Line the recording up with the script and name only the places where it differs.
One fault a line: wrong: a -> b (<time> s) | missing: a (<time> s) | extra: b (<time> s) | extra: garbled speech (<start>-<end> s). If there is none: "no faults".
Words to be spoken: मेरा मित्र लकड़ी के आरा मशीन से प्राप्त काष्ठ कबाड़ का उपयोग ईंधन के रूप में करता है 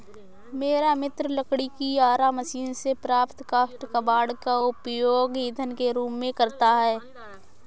wrong: के -> की (1.7 s)